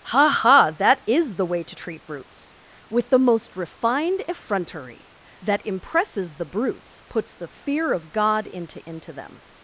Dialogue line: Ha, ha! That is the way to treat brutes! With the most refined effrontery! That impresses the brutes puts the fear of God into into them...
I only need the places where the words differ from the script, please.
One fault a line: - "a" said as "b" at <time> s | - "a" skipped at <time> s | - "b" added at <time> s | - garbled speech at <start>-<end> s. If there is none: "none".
none